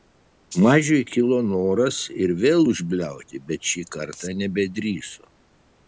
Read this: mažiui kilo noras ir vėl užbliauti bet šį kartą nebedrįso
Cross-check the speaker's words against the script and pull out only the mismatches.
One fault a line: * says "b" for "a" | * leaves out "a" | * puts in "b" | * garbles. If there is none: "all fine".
all fine